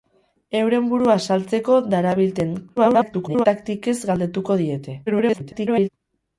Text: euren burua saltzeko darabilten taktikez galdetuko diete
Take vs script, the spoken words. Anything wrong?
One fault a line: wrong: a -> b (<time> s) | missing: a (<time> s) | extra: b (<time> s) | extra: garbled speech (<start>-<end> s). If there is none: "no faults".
extra: garbled speech (2.8-3.5 s)
extra: garbled speech (5.1-5.9 s)